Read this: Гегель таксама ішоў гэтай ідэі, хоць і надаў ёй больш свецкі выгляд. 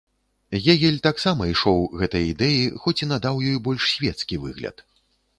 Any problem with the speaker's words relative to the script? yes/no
no